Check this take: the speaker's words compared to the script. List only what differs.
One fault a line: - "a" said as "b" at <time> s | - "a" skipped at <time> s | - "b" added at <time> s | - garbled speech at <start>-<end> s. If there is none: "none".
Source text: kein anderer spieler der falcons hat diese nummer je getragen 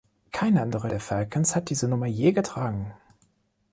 - "spieler" skipped at 0.9 s